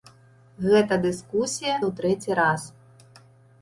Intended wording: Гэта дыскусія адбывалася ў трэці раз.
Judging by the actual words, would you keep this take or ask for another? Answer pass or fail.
fail